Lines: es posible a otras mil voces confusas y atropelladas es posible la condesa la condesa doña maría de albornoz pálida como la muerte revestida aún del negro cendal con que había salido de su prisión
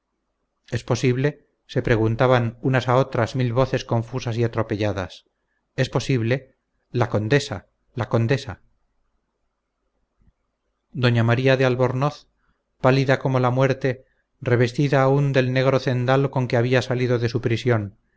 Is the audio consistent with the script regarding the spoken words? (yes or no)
no